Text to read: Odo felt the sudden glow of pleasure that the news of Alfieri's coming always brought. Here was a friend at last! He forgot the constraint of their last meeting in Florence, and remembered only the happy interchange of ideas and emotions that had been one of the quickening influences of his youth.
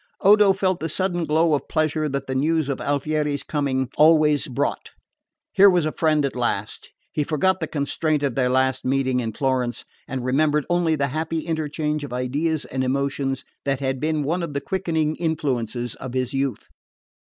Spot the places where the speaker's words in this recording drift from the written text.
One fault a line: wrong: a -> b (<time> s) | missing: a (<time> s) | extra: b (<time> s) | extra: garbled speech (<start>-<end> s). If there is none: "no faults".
no faults